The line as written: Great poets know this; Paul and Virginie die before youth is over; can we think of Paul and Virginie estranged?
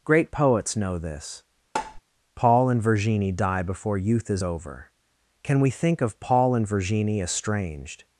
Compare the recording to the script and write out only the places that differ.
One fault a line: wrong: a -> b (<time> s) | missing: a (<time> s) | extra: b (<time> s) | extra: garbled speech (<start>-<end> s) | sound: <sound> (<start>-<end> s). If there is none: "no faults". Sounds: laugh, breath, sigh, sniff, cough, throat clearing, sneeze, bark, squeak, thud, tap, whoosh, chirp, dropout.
sound: tap (1.8-2.0 s)